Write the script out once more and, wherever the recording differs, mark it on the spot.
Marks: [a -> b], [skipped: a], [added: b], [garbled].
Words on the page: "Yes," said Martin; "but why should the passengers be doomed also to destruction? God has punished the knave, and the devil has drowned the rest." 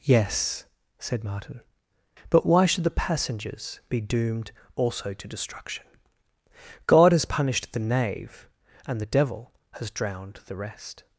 "Yes," said Martin; "but why should the passengers be doomed also to destruction? God has punished the knave, and the devil has drowned the rest."